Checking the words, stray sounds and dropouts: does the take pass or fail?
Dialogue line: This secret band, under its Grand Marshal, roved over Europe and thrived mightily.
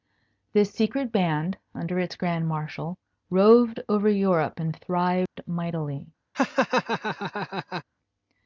fail